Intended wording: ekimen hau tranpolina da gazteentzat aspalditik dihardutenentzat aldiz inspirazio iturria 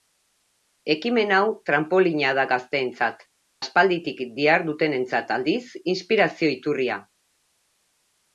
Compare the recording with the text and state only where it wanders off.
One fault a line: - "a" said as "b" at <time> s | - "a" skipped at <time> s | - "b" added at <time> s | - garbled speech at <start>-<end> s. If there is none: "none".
none